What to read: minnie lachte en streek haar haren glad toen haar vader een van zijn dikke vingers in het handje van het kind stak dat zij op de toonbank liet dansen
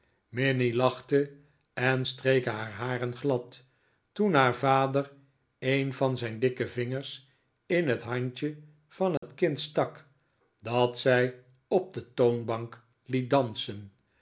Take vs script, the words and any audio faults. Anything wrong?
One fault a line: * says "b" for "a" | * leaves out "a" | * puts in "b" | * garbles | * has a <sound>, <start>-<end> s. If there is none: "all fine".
* has a dropout, 9.2-9.2 s